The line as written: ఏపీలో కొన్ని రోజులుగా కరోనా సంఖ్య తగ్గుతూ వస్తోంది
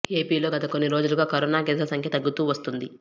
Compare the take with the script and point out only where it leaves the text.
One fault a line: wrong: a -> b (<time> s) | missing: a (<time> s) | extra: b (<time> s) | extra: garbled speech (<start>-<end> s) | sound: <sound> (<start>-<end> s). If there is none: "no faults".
extra: గత (0.5 s)
extra: కేసుల (1.6 s)